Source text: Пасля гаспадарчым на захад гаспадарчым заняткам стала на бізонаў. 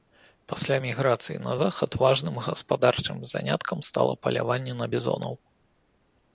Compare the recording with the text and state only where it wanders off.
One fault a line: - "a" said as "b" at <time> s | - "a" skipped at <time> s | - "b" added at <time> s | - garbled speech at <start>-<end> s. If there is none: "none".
- "гаспадарчым" said as "міграцыі" at 0.8 s
- "важным" added at 2.0 s
- "паляванне" added at 4.3 s